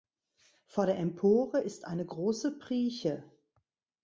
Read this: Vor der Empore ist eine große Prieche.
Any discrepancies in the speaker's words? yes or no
no